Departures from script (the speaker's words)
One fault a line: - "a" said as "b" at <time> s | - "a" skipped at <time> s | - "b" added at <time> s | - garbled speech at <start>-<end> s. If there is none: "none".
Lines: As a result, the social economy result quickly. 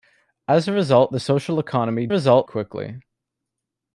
none